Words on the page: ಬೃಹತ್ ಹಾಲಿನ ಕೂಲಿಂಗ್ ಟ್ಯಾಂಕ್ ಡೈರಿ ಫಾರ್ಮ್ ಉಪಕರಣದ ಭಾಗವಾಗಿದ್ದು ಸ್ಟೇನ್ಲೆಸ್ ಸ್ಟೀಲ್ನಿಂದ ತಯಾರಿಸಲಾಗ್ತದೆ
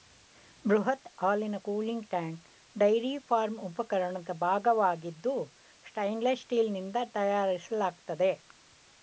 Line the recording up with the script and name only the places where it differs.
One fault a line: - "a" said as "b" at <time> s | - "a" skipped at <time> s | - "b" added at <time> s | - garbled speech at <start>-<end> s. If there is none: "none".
none